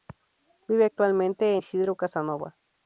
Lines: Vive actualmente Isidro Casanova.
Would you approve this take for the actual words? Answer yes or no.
yes